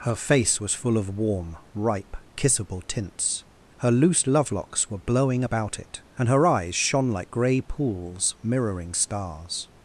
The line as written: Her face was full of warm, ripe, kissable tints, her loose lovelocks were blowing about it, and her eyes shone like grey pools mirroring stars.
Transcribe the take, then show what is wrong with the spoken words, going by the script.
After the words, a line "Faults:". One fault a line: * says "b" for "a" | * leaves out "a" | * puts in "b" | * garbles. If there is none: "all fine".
Her face was full of warm, ripe, kissable tints, her loose lovelocks were blowing about it, and her eyes shone like grey pools mirroring stars.
Faults:
all fine